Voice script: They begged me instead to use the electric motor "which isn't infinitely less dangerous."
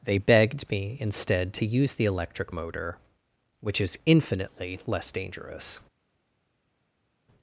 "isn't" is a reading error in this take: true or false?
true